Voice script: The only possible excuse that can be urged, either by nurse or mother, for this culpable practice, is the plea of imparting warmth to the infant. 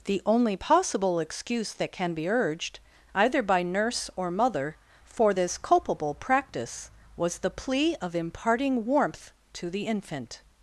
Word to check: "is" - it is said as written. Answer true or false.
false